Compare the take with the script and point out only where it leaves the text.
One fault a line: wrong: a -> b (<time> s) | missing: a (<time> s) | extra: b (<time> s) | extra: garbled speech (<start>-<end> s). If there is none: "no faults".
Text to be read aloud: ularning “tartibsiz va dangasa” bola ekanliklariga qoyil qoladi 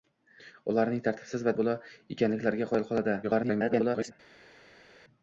missing: dangasa (1.5 s)
extra: garbled speech (3.2-4.1 s)